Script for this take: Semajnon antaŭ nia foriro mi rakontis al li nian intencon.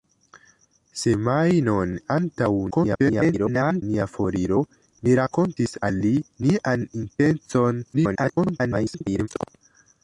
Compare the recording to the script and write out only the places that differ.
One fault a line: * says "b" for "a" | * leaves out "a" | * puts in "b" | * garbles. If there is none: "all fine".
* garbles
* garbles